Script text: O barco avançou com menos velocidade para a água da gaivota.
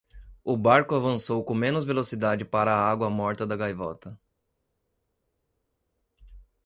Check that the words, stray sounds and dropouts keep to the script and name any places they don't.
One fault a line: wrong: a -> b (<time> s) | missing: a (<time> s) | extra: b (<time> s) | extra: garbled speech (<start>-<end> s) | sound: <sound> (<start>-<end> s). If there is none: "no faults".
extra: morta (3.1 s)